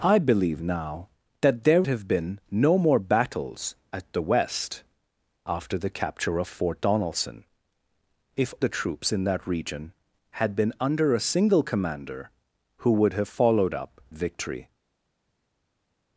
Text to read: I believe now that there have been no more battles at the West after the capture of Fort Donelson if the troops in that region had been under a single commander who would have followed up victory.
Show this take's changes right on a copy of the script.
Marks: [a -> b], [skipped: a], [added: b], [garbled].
I believe now that there have been no more battles at the West after the capture of Fort Donelson if the troops in that region had been under a single commander who would have followed up victory.